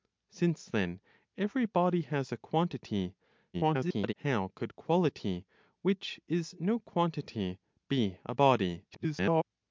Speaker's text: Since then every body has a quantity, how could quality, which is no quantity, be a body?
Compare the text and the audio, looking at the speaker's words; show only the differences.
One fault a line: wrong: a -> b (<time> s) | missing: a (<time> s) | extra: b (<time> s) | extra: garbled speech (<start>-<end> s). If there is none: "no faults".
extra: garbled speech (3.5-4.1 s)
extra: garbled speech (8.9-9.4 s)